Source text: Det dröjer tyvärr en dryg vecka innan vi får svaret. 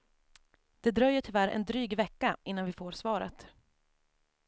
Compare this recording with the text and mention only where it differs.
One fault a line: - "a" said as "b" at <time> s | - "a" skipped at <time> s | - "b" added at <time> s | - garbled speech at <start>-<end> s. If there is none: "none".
none